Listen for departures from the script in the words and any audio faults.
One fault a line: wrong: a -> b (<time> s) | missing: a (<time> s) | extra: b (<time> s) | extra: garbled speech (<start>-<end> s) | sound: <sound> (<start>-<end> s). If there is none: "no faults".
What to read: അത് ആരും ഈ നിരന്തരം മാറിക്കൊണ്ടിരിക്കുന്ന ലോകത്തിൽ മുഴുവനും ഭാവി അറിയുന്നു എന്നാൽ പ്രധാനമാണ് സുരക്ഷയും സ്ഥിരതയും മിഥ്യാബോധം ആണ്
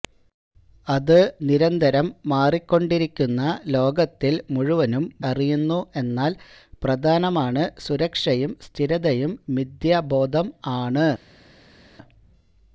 missing: ആരും ഈ (1.2 s)
missing: ഭാവി (5.0 s)